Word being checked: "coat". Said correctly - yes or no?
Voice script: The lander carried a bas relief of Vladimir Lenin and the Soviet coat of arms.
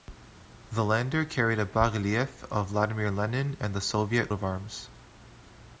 no